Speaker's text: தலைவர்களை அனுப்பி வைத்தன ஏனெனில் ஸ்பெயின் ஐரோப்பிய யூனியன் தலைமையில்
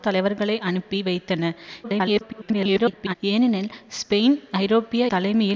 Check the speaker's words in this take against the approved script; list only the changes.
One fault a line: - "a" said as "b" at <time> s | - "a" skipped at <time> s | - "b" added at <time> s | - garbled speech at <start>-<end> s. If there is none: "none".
- garbled speech at 1.8-3.1 s
- "யூனியன்" skipped at 5.0 s